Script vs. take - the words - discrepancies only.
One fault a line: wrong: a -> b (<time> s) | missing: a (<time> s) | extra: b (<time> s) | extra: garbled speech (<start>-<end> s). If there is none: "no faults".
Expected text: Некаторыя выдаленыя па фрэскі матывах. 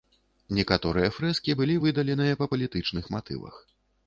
extra: фрэскі былі (1.2 s)
wrong: фрэскі -> палітычных (2.5 s)